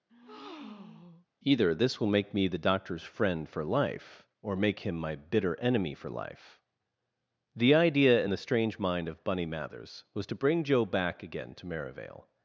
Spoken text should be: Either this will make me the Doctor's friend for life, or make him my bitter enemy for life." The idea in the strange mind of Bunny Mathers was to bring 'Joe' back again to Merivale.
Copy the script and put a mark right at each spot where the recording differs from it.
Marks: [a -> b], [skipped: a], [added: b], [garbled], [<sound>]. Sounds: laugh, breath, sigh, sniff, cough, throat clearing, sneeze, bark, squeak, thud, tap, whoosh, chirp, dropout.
[breath] Either this will make me the Doctor's friend for life, or make him my bitter enemy for life." The idea in the strange mind of Bunny Mathers was to bring 'Joe' back again to Merivale.